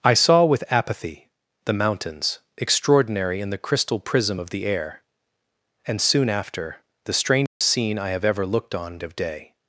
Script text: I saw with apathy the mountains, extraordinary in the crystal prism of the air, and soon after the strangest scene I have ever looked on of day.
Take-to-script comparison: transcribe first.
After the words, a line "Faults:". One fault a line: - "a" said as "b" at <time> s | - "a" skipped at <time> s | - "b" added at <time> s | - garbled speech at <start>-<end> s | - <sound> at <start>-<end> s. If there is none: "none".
I saw with apathy the mountains, extraordinary in the crystal prism of the air, and soon after the strangest scene I have ever looked on of day.
Faults:
- dropout at 7.5-7.6 s